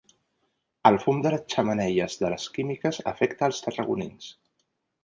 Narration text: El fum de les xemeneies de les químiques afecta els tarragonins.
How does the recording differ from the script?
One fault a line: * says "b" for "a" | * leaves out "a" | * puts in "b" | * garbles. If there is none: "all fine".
all fine